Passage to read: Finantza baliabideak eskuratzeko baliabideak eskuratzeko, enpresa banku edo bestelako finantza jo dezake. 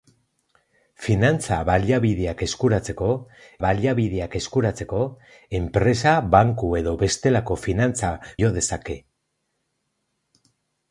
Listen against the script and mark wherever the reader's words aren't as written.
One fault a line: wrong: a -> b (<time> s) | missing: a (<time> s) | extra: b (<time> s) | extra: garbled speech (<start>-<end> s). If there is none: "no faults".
no faults